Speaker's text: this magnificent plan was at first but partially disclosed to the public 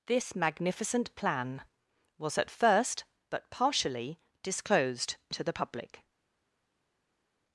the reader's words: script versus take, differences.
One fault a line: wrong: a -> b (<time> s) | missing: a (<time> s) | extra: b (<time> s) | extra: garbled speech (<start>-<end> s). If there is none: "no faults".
no faults